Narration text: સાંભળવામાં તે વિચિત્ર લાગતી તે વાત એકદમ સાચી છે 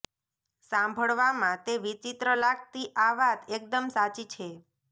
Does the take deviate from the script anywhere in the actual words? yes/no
yes